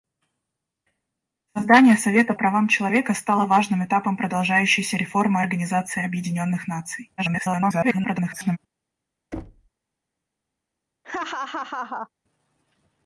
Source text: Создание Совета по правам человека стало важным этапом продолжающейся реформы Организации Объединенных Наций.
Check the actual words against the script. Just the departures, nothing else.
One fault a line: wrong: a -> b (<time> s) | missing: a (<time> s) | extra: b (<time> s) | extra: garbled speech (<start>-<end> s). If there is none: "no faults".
missing: по (2.3 s)
extra: garbled speech (7.2-8.6 s)